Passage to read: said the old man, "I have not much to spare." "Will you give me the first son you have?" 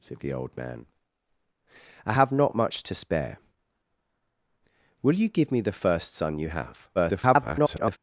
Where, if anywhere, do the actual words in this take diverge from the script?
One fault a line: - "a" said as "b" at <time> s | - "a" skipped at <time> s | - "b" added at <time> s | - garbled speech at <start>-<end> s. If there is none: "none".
- garbled speech at 6.9-8.0 s